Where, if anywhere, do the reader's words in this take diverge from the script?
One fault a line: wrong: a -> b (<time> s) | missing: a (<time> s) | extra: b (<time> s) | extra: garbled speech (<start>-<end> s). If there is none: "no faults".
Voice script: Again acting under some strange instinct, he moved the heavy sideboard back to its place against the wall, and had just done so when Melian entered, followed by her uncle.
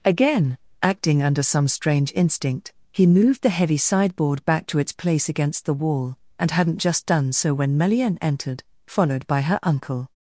wrong: had -> hadn't (6.5 s)